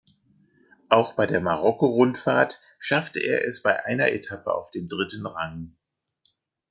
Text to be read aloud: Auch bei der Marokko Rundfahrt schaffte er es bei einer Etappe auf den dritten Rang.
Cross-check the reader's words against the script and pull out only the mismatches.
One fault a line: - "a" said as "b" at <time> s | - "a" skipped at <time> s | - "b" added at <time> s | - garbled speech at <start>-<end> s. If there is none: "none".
none